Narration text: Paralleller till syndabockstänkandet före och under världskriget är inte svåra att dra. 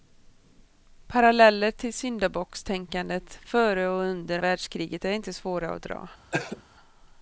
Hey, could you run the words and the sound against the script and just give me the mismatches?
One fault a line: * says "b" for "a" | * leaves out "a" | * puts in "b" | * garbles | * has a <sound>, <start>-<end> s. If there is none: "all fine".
* has a cough, 6.3-6.6 s